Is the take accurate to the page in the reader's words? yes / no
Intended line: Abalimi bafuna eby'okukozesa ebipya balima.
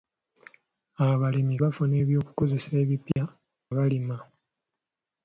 yes